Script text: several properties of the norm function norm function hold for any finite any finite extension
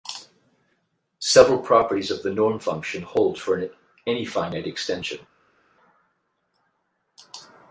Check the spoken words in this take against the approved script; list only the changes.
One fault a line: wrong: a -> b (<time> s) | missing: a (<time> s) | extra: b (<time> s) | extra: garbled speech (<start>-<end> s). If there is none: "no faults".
missing: norm function (3.0 s)
missing: any finite (4.7 s)